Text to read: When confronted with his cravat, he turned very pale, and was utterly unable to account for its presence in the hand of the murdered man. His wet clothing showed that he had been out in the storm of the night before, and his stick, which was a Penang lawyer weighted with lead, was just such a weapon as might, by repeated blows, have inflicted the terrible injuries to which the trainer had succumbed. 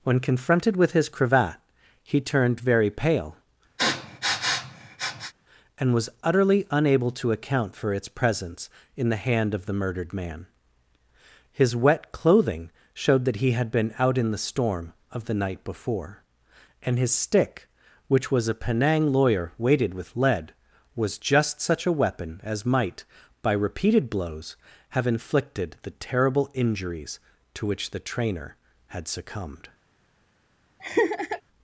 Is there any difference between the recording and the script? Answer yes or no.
no